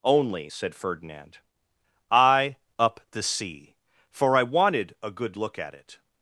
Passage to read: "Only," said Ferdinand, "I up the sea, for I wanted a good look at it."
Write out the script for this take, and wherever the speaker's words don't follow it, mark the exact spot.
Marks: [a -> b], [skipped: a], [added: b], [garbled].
"Only," said Ferdinand, "I up the sea, for I wanted a good look at it."